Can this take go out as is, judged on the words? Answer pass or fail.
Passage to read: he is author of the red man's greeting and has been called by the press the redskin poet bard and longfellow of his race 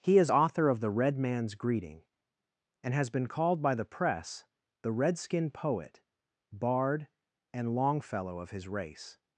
pass